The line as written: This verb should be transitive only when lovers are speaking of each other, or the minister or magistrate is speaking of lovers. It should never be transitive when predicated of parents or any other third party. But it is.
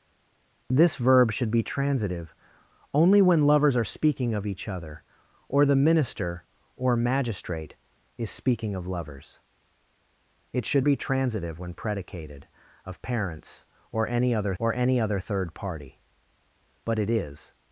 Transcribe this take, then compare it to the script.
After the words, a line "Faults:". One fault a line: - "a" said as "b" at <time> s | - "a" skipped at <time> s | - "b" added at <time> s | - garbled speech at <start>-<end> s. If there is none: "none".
This verb should be transitive only when lovers are speaking of each other, or the minister or magistrate is speaking of lovers. It should be transitive when predicated of parents or any other or any other third party. But it is.
Faults:
- "never" skipped at 10.9 s
- "or any other" added at 14.6 s